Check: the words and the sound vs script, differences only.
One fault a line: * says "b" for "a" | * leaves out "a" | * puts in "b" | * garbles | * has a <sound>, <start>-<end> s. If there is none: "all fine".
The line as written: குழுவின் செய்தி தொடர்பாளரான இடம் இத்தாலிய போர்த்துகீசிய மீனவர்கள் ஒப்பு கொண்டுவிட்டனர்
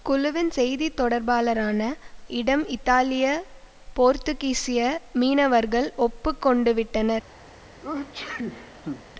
* has a sneeze, 7.8-9.0 s